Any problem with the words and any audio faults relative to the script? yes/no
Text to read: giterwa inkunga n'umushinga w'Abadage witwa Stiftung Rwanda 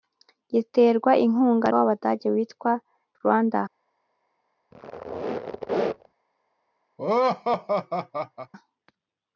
yes